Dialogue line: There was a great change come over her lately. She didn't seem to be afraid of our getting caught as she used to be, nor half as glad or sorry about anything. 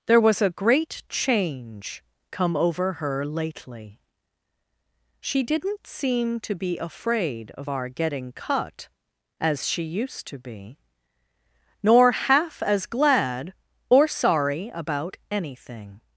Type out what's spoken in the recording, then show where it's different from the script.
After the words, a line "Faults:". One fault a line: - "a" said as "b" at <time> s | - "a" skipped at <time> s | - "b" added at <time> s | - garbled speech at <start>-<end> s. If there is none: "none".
There was a great change come over her lately. She didn't seem to be afraid of our getting cut as she used to be, nor half as glad or sorry about anything.
Faults:
- "caught" said as "cut" at 8.3 s